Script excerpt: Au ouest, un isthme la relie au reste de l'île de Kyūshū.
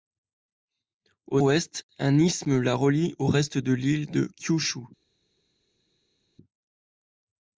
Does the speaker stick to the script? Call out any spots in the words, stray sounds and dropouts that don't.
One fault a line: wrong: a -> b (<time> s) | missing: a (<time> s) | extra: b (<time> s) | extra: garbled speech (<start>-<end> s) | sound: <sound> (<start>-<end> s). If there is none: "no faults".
no faults